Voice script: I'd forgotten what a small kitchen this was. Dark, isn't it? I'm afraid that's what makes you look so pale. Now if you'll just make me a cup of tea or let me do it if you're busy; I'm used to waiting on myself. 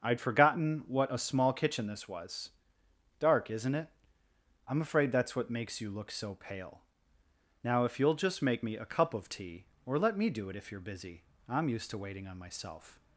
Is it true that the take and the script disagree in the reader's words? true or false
false